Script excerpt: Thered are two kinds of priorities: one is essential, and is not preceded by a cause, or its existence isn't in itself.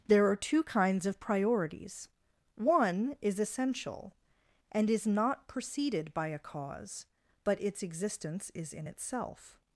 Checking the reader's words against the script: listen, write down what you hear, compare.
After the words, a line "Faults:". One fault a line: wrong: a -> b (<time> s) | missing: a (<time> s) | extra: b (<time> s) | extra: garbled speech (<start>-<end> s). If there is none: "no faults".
There are two kinds of priorities: one is essential, and is not preceded by a cause, but its existence is in itself.
Faults:
wrong: Thered -> There (0.1 s)
wrong: or -> but (7.4 s)
wrong: isn't -> is (8.5 s)